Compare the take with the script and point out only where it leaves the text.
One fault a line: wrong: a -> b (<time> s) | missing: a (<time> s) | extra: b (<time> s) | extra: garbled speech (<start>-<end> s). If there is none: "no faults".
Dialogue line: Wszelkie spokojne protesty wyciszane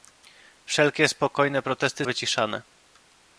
no faults